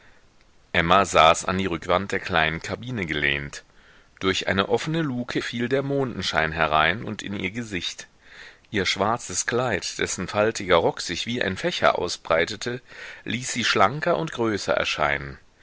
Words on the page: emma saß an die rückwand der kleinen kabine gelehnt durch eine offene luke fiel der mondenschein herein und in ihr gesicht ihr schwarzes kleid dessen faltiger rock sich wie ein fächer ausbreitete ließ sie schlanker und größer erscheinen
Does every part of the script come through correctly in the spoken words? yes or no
yes